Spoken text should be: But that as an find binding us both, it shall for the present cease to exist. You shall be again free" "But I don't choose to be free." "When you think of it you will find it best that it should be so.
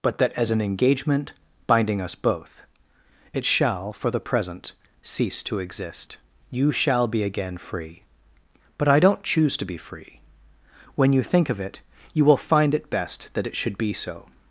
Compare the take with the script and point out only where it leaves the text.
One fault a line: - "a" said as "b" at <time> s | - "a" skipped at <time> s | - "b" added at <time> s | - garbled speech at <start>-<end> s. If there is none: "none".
- "find" said as "engagement" at 0.6 s